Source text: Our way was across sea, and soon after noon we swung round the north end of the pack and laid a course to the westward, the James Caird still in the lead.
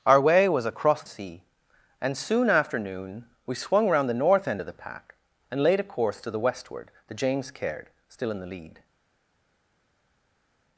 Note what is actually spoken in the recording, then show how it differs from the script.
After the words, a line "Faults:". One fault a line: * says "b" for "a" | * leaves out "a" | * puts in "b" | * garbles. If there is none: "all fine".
Our way was across sea, and soon after noon we swung round the north end of the pack and laid a course to the westward, the James Caird still in the lead.
Faults:
all fine